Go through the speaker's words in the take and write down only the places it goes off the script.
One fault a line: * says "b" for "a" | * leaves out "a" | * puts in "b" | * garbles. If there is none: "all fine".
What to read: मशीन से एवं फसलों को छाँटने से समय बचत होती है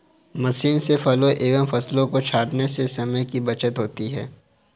* puts in "फलों"
* puts in "की"